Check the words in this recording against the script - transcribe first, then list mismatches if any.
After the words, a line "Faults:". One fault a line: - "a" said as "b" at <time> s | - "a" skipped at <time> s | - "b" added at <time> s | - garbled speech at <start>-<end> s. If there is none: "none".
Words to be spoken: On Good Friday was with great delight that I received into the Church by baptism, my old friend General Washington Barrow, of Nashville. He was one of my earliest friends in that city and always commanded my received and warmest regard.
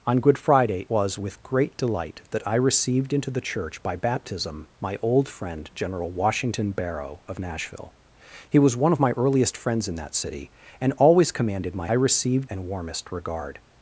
On Good Friday was with great delight that I received into the Church by baptism, my old friend General Washington Barrow, of Nashville. He was one of my earliest friends in that city and always commanded my received and warmest regard.
Faults:
none